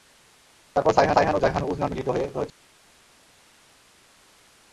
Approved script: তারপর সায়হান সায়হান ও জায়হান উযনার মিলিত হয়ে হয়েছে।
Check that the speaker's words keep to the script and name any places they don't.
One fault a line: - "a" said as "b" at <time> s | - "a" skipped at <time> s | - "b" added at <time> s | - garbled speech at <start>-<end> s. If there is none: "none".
none